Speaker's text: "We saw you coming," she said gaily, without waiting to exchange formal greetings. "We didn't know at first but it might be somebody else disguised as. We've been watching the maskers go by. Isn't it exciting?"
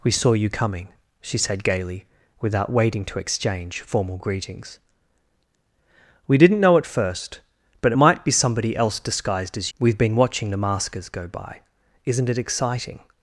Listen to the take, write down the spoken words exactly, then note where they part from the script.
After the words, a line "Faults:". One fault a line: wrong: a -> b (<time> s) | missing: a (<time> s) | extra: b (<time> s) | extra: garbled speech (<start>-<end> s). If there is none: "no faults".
"We saw you coming," she said gaily, without waiting to exchange formal greetings. "We didn't know at first but it might be somebody else disguised as. We've been watching the maskers go by. Isn't it exciting?"
Faults:
no faults